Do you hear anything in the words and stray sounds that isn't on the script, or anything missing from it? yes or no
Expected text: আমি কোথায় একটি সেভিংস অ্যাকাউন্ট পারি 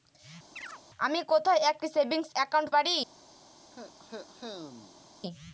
yes